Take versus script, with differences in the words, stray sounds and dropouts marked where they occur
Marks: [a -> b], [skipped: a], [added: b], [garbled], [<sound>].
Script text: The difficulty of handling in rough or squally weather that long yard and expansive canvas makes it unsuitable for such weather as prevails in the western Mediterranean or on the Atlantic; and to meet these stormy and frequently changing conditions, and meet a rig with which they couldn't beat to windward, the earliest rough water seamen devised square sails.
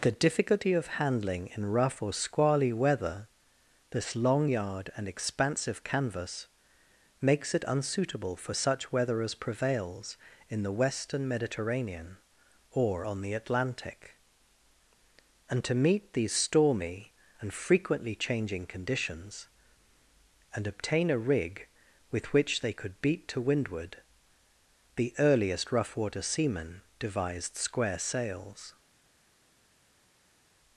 The difficulty of handling in rough or squally weather [that -> this] long yard and expansive canvas makes it unsuitable for such weather as prevails in the western Mediterranean or on the Atlantic; and to meet these stormy and frequently changing conditions, and [meet -> obtain] a rig with which they [couldn't -> could] beat to windward, the earliest rough water seamen devised square sails.